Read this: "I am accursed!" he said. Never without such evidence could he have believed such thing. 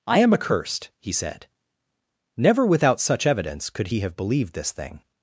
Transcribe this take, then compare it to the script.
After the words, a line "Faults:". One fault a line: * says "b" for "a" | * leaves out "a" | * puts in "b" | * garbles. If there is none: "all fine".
"I am accursed!" he said. Never without such evidence could he have believed this thing.
Faults:
* says "this" for "such"